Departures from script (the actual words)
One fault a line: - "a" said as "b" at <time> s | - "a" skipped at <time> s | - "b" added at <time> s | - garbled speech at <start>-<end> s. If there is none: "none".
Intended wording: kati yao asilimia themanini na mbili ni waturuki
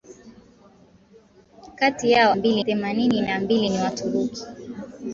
- "asilimia" said as "mbili" at 2.3 s